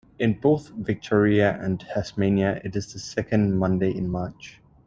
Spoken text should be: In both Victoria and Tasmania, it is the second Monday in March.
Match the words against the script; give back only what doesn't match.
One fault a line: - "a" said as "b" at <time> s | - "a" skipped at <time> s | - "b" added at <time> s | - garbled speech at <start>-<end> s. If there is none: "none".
none